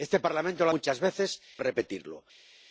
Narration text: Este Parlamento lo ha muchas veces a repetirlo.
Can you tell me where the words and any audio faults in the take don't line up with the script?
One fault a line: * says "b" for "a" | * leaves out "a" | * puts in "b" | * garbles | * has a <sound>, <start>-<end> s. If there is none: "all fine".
all fine